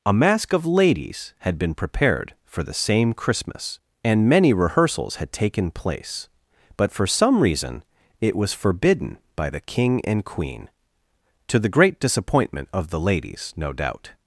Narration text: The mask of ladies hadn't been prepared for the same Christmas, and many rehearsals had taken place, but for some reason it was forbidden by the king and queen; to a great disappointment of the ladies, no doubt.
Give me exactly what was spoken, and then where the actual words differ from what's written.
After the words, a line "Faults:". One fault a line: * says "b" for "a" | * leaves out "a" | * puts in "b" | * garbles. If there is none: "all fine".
A mask of ladies had been prepared for the same Christmas, and many rehearsals had taken place, but for some reason it was forbidden by the king and queen; to the great disappointment of the ladies, no doubt.
Faults:
* says "A" for "The"
* says "had" for "hadn't"
* says "the" for "a"